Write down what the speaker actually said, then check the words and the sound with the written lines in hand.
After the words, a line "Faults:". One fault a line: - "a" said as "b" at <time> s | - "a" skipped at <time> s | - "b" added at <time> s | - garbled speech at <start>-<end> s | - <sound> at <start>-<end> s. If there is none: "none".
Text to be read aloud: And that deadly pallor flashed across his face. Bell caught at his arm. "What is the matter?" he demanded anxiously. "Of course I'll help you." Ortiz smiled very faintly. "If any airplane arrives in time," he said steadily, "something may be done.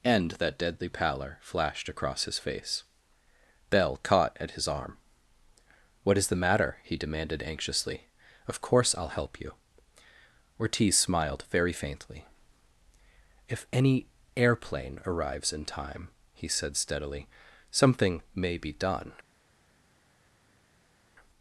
And that deadly pallor flashed across his face. Bell caught at his arm. "What is the matter?" he demanded anxiously. "Of course I'll help you." Ortiz smiled very faintly. "If any airplane arrives in time," he said steadily, "something may be done.
Faults:
none